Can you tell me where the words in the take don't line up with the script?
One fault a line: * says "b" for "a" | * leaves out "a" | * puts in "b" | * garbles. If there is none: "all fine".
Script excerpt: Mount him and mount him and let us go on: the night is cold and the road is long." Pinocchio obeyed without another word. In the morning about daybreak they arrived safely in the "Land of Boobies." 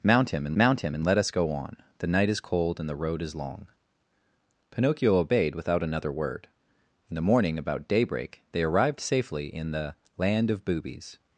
all fine